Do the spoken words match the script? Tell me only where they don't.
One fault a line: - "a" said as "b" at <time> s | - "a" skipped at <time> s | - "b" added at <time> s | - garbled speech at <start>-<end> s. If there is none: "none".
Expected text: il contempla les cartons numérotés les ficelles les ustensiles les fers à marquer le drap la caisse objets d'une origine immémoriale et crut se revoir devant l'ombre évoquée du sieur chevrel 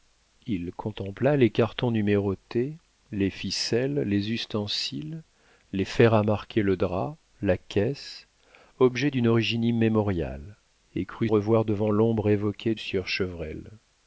- "se" skipped at 11.3 s
- "du" skipped at 12.8 s